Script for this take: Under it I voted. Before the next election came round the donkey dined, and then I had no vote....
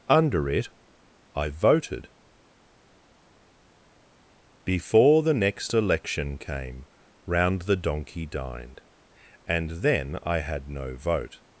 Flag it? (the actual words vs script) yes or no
no